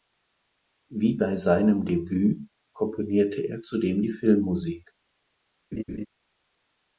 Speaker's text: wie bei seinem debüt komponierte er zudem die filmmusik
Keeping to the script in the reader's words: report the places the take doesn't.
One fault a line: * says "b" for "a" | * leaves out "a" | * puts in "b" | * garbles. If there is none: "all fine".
all fine